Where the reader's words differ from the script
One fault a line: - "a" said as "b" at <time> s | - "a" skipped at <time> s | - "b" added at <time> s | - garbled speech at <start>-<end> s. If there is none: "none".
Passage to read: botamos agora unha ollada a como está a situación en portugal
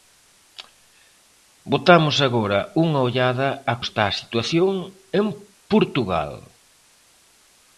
- "como" skipped at 3.8 s